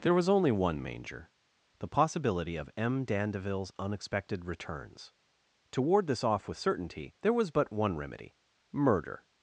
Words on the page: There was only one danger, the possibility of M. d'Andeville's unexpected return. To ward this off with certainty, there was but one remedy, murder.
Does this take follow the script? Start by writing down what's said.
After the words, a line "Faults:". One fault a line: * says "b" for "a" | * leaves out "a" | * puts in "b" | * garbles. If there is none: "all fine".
There was only one manger, the possibility of M. d'Andeville's unexpected returns. To ward this off with certainty, there was but one remedy, murder.
Faults:
* says "manger" for "danger"
* says "returns" for "return"